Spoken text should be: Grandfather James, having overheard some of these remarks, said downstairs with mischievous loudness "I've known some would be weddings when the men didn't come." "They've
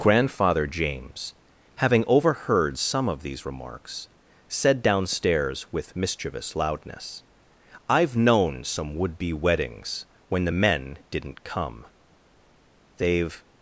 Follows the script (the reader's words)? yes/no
yes